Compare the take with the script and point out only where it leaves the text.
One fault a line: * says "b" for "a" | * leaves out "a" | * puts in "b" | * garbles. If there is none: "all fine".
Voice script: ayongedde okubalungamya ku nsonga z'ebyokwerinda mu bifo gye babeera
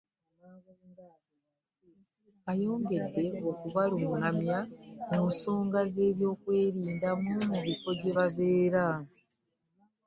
all fine